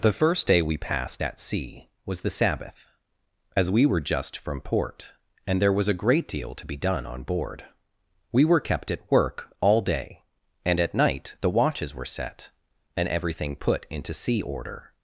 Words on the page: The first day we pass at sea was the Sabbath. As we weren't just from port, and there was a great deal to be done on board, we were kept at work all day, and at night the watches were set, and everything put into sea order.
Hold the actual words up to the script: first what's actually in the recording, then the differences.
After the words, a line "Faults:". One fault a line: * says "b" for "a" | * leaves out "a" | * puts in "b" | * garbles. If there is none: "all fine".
The first day we passed at sea was the Sabbath. As we were just from port, and there was a great deal to be done on board, we were kept at work all day, and at night the watches were set, and everything put into sea order.
Faults:
* says "passed" for "pass"
* says "were" for "weren't"